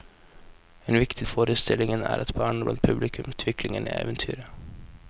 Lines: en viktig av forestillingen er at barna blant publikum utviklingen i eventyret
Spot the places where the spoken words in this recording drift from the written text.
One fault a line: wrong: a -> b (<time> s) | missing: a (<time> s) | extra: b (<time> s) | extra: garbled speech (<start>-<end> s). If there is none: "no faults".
no faults